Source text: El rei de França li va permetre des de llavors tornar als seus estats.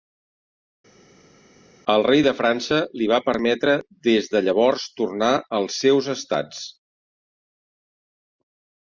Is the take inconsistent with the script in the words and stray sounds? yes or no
no